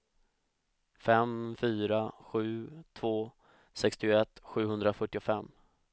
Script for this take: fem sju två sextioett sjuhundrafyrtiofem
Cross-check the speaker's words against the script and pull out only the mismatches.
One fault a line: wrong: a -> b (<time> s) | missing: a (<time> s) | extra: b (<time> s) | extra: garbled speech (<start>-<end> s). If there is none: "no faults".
extra: fyra (1.5 s)